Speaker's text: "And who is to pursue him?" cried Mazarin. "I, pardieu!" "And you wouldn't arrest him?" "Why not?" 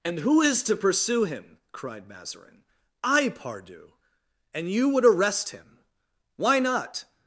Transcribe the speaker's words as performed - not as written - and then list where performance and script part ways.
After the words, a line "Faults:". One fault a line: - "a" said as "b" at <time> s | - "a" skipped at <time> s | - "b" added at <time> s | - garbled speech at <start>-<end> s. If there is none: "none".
"And who is to pursue him?" cried Mazarin. "I, pardieu!" "And you would arrest him?" "Why not?"
Faults:
- "wouldn't" said as "would" at 4.9 s